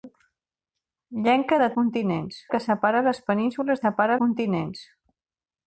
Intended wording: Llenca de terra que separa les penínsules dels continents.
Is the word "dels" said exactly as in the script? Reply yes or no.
no